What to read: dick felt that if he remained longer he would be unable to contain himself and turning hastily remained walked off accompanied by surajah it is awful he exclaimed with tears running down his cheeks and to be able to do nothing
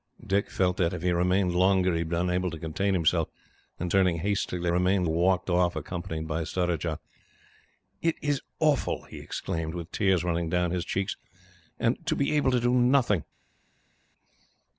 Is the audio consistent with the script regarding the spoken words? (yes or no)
yes